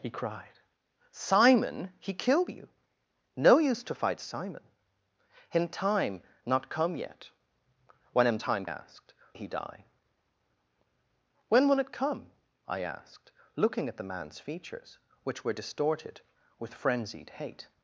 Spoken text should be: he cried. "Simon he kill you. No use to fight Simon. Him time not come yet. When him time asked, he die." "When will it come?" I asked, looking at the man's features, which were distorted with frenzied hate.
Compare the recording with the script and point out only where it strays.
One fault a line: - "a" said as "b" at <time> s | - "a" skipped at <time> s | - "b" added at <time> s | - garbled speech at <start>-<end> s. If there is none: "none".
none